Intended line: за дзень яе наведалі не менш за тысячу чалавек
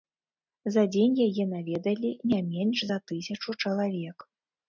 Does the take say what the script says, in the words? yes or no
yes